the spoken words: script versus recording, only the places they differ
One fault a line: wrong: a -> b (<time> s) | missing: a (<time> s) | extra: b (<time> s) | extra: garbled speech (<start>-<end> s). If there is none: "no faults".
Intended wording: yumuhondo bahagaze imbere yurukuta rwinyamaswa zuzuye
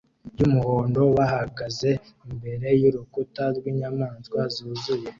no faults